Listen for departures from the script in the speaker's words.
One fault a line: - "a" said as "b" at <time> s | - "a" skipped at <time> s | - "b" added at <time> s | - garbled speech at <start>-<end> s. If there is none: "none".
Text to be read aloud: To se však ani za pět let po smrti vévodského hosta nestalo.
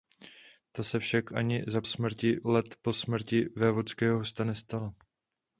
- "pět" said as "smrti" at 1.8 s